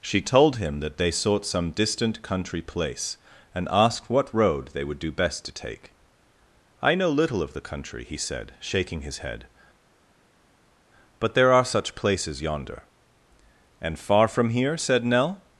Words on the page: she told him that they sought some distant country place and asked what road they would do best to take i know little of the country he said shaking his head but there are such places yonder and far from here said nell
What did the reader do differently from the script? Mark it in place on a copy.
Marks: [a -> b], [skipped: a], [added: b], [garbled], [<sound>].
she told him that they sought some distant country place and asked what road they would do best to take i know little of the country he said shaking his head but there are such places yonder and far from here said nell